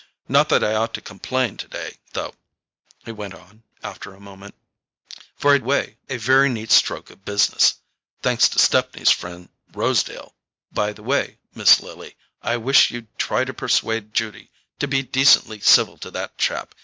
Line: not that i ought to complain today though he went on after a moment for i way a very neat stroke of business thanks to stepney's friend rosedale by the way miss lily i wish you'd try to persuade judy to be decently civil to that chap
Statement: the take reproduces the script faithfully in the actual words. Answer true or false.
true